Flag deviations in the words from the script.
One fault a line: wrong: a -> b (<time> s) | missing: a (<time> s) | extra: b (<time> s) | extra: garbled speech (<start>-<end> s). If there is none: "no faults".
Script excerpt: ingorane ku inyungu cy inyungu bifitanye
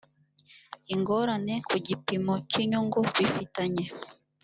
wrong: inyungu -> gipimo (1.9 s)